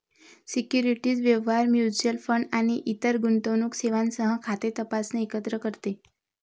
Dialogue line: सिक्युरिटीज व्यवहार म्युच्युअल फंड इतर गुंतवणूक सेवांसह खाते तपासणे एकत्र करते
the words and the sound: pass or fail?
fail